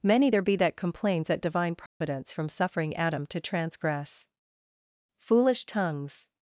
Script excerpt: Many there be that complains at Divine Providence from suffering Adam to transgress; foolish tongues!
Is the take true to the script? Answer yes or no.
yes